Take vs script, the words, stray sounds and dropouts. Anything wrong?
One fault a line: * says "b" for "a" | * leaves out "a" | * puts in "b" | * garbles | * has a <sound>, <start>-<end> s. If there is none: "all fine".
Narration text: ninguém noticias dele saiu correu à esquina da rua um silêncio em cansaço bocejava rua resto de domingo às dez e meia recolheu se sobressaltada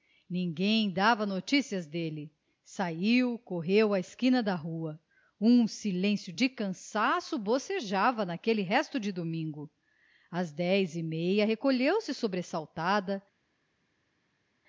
* puts in "dava"
* says "de" for "em"
* says "naquele" for "rua"